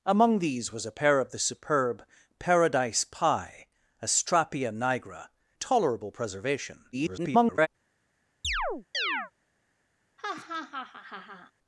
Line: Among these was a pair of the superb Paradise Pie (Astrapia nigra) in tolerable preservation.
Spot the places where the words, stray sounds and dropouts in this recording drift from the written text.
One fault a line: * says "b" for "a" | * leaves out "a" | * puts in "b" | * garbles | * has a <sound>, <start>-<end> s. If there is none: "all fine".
* leaves out "in"
* garbles
* has a chirp, 8.4-9.3 s
* has a laugh, 10.2-11.5 s